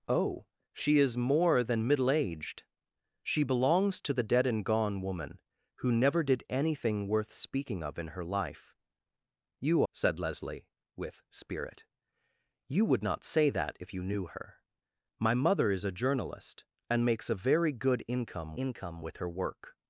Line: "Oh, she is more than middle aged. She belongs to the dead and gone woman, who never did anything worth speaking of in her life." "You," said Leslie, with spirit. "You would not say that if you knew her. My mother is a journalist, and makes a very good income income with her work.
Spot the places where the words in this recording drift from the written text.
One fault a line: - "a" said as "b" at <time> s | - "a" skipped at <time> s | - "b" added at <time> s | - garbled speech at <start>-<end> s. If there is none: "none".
none